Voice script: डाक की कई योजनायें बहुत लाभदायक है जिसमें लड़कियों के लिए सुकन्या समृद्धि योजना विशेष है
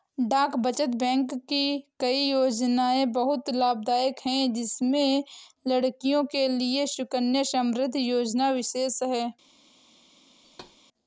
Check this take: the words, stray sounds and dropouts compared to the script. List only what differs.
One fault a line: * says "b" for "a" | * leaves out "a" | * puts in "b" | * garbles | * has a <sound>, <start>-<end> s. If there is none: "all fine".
* puts in "बचत बैंक"
* has a thud, 10.4-10.8 s